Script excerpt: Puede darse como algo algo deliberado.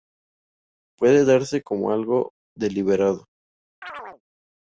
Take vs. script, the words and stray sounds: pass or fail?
fail